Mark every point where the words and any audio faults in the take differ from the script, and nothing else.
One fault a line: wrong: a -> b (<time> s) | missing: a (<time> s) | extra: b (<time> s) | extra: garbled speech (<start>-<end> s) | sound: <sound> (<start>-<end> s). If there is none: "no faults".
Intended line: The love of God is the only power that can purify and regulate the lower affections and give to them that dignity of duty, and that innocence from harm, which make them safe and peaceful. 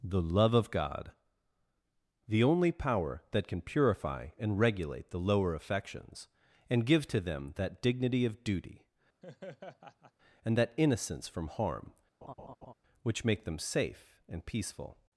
missing: is (1.1 s)
sound: laugh (9.2-10.1 s)
sound: laugh (12.2-12.7 s)